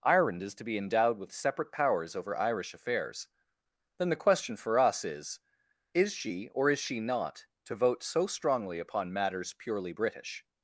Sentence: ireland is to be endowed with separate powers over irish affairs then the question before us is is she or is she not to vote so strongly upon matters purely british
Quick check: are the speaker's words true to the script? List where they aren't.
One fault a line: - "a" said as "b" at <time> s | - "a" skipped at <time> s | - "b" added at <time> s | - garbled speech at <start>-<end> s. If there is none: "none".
- "before" said as "for" at 4.6 s